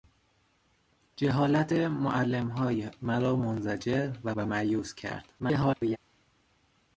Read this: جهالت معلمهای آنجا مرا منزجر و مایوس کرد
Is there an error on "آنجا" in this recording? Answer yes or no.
yes